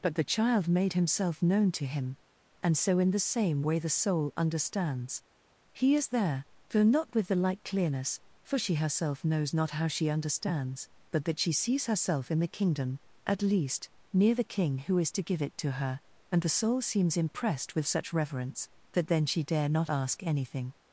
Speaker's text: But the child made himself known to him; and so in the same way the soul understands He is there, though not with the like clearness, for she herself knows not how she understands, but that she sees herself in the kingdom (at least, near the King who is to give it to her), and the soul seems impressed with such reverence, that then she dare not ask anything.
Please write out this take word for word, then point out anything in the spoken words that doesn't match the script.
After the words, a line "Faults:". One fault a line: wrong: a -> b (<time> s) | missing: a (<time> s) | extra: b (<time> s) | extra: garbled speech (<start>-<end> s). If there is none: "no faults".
But the child made himself known to him; and so in the same way the soul understands He is there, though not with the like clearness, for she herself knows not how she understands, but that she sees herself in the kingdom (at least, near the King who is to give it to her), and the soul seems impressed with such reverence, that then she dare not ask anything.
Faults:
no faults